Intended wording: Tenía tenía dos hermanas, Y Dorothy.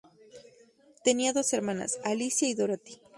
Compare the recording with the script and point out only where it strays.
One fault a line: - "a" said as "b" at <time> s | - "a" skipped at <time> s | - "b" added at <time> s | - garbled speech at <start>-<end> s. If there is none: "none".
- "tenía" skipped at 1.3 s
- "Alicia" added at 2.0 s